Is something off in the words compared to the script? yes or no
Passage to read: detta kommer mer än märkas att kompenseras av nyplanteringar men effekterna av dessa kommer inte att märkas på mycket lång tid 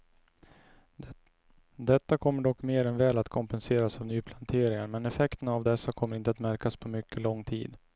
yes